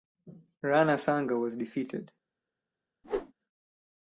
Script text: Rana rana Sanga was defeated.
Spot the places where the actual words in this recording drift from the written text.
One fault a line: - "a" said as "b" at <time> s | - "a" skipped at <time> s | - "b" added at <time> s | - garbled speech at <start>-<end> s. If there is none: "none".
- "rana" skipped at 1.0 s